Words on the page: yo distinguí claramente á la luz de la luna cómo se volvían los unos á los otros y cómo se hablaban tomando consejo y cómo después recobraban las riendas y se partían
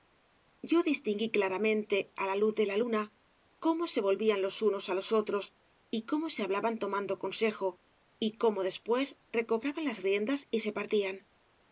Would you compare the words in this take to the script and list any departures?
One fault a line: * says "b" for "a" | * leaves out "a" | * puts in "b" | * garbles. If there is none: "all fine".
all fine